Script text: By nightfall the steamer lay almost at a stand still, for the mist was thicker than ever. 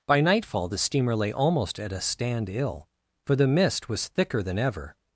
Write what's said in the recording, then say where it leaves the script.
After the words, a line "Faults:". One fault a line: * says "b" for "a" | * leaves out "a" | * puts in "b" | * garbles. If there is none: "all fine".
By nightfall the steamer lay almost at a stand ill, for the mist was thicker than ever.
Faults:
* says "ill" for "still"